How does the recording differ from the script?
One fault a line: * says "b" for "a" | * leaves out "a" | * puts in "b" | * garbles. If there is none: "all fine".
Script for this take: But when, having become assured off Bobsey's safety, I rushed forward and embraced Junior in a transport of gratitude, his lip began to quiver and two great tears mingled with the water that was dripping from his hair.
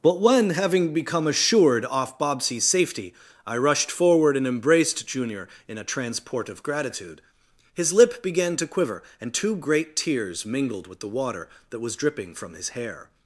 all fine